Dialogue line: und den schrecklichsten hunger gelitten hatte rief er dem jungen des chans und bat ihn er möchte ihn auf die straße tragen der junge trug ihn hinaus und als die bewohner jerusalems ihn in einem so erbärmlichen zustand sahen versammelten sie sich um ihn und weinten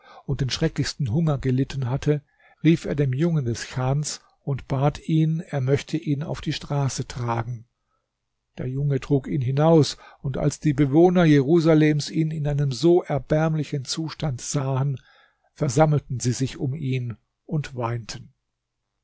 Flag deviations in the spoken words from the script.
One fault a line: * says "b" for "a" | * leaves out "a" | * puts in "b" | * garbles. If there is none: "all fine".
all fine